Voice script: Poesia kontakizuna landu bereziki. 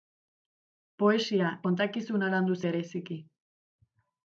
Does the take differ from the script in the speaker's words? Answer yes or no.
no